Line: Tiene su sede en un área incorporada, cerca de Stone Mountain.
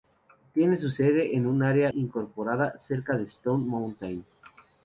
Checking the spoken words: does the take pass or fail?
pass